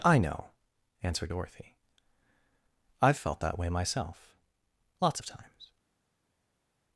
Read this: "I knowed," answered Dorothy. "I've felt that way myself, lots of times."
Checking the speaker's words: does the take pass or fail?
fail